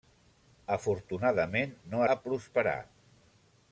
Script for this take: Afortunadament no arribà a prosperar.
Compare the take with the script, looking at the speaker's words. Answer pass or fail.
fail